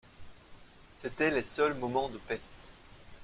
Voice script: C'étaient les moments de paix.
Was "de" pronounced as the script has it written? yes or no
yes